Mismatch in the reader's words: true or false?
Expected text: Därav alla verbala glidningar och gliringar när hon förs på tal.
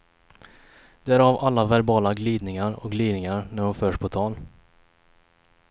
false